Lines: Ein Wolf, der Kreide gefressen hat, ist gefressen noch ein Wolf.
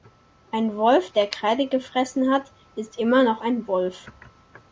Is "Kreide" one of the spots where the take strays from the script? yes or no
no